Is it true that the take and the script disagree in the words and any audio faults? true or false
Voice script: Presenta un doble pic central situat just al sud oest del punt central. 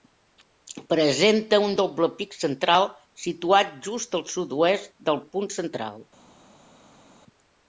false